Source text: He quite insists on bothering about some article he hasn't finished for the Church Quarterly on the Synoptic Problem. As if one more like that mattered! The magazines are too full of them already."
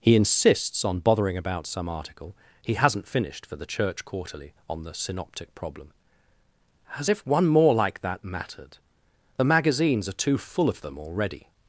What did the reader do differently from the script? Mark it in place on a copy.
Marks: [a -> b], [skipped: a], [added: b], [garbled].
He [skipped: quite] insists on bothering about some article he hasn't finished for the Church Quarterly on the Synoptic Problem. As if one more like that mattered! The magazines are too full of them already."